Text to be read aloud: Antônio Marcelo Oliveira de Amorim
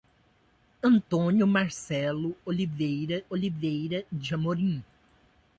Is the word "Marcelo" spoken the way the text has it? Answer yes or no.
yes